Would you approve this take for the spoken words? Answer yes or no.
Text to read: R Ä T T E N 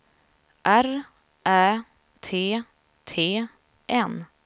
no